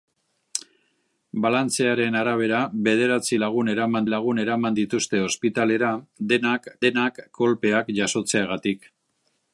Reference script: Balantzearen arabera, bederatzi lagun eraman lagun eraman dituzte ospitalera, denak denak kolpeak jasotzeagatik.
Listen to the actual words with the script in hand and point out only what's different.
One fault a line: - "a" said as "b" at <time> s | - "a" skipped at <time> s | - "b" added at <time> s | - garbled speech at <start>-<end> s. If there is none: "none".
none